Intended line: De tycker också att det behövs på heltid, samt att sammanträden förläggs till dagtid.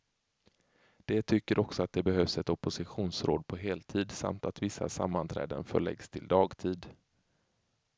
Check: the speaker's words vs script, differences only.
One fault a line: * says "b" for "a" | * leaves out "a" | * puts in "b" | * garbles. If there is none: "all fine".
* puts in "ett oppositionsråd"
* puts in "vissa"